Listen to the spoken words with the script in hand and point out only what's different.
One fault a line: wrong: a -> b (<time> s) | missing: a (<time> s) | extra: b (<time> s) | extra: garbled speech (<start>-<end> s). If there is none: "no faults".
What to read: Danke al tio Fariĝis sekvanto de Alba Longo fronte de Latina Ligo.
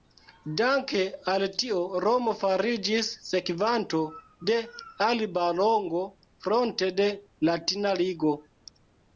extra: Romo (2.0 s)